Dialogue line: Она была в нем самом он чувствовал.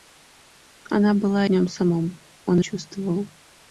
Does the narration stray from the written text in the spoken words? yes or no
no